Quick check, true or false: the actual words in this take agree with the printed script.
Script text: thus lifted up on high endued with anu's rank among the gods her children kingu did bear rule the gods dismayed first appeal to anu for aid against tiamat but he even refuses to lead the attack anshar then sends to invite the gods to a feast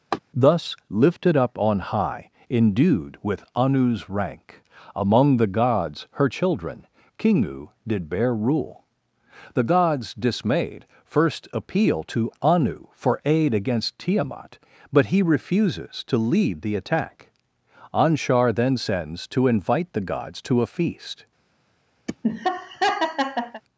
false